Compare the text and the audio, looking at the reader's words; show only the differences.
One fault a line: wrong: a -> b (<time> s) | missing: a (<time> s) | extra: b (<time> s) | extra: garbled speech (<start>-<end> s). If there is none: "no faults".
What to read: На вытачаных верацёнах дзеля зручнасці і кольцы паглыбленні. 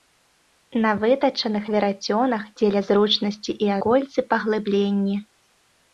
no faults